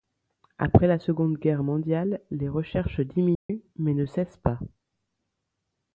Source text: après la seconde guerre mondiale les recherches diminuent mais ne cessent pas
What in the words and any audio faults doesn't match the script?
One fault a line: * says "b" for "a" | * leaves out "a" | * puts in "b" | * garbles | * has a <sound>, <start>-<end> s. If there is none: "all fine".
* has a dropout, 3.3-3.5 s